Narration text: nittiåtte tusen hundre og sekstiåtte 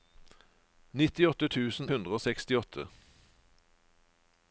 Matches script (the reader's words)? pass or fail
pass